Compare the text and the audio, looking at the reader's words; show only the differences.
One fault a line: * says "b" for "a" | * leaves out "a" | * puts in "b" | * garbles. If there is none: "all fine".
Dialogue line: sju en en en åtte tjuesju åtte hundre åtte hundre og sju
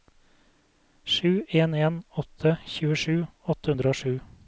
* leaves out "en"
* leaves out "åtte hundre"